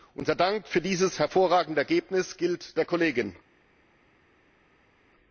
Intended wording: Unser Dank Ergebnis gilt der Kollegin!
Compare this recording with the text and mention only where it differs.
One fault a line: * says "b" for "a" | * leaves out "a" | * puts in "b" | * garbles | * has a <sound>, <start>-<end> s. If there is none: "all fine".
* puts in "für dieses hervorragende"